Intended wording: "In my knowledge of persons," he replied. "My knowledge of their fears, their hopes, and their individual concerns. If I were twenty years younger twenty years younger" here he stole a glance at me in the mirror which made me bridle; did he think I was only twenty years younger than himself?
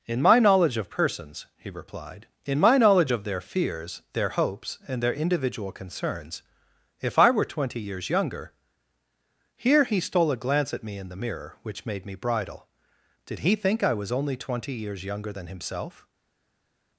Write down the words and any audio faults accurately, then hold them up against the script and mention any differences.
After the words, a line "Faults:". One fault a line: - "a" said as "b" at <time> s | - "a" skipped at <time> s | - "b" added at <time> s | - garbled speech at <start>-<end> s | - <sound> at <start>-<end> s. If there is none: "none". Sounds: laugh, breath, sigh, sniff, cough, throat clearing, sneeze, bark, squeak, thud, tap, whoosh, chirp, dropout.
"In my knowledge of persons," he replied. "In my knowledge of their fears, their hopes, and their individual concerns. If I were twenty years younger" here he stole a glance at me in the mirror which made me bridle; did he think I was only twenty years younger than himself?
Faults:
- "In" added at 2.5 s
- "twenty years younger" skipped at 8.5 s